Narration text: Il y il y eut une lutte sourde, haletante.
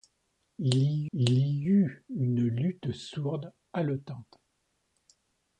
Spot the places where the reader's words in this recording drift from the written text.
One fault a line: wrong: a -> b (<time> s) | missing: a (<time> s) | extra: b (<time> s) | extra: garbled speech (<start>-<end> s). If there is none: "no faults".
no faults